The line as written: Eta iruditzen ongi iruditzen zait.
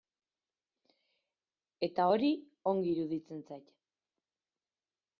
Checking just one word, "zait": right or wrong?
right